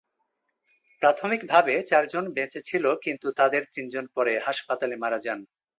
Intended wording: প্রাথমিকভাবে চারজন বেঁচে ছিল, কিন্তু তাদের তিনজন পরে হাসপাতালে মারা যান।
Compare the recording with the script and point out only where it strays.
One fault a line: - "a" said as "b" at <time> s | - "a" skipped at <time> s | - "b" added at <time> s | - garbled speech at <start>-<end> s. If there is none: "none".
none